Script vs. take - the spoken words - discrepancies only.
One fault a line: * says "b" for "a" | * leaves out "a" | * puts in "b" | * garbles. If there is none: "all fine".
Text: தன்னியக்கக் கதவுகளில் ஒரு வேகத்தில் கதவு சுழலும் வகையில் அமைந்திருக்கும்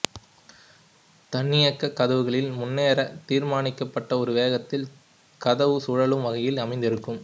* puts in "முன்னரே தீர்மானிக்கப்பட்ட"